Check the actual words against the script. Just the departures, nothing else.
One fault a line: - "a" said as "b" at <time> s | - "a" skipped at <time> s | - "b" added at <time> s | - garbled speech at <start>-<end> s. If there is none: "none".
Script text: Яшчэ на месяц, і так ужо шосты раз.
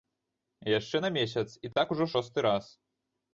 none